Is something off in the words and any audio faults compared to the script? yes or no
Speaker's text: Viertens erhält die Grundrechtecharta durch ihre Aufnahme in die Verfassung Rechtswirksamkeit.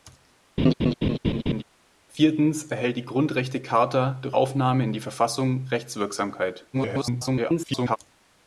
yes